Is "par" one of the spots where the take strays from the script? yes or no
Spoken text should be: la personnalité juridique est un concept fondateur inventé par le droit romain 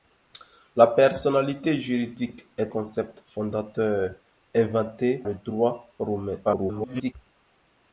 yes